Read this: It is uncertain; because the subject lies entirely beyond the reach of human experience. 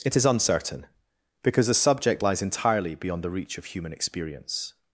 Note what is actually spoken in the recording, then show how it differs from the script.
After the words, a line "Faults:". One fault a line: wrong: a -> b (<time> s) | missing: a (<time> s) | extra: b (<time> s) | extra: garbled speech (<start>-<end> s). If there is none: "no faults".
It is uncertain; because the subject lies entirely beyond the reach of human experience.
Faults:
no faults